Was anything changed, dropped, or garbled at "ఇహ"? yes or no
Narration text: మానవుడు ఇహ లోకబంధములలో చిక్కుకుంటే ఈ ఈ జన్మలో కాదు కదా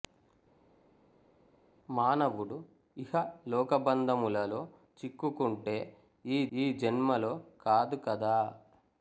no